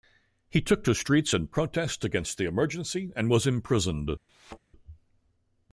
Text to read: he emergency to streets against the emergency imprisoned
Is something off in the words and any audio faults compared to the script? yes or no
yes